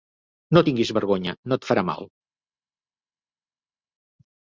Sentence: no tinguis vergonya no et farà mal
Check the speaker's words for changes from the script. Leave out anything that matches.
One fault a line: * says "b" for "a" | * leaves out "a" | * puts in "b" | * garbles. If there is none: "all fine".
all fine